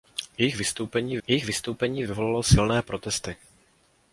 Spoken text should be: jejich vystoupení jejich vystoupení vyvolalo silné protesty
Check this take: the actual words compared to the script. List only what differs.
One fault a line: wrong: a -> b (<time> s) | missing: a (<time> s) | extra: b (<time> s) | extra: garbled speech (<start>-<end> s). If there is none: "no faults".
no faults